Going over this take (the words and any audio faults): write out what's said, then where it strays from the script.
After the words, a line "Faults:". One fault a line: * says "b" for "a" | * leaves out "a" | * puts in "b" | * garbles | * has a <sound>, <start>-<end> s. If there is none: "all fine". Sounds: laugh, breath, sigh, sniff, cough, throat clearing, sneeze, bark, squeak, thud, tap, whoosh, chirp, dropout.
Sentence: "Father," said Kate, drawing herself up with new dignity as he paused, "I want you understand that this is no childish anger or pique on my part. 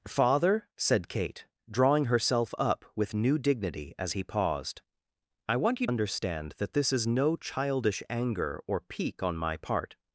"Father," said Kate, drawing herself up with new dignity as he paused, "I want you understand that this is no childish anger or pique on my part.
Faults:
all fine